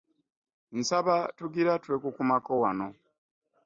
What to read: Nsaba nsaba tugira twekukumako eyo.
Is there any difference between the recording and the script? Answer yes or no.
yes